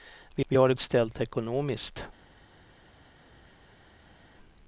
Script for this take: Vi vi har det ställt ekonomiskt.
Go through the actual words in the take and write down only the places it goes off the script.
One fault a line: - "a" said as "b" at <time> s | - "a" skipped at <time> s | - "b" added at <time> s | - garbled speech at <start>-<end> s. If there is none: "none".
none